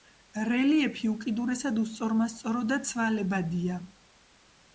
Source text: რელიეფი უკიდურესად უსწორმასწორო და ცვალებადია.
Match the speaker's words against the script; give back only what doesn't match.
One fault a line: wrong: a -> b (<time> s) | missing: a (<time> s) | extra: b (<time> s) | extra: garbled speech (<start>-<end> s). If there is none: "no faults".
no faults